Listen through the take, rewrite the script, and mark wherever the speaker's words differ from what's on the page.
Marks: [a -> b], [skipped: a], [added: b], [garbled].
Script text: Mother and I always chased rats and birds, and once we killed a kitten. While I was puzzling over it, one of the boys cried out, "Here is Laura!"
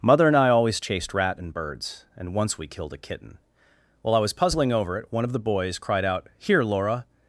Mother and I always chased [rats -> rat] and birds, and once we killed a kitten. While I was puzzling over it, one of the boys cried out, "Here [skipped: is] Laura!"